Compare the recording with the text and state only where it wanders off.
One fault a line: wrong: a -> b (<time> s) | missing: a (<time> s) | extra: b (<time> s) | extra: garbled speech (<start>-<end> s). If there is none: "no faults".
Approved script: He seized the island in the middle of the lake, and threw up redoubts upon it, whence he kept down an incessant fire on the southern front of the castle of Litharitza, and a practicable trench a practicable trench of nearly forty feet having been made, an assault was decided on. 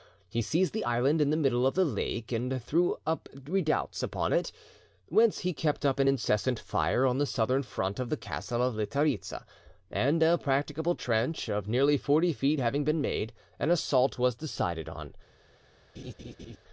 wrong: down -> up (5.8 s)
missing: a practicable trench (11.5 s)